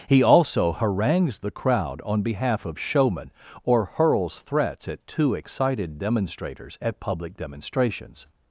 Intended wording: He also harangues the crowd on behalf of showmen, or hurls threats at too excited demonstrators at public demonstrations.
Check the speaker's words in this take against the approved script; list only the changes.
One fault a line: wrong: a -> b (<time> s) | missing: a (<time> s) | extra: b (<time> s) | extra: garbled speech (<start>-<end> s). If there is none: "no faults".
no faults